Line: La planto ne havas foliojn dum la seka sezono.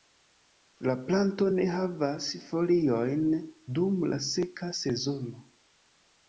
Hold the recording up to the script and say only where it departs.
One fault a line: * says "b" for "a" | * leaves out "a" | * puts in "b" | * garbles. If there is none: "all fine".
all fine